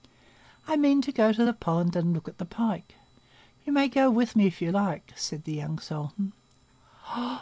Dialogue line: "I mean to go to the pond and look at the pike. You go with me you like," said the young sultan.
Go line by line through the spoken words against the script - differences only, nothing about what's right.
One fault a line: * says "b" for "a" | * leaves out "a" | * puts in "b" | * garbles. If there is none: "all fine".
* puts in "may"
* puts in "if"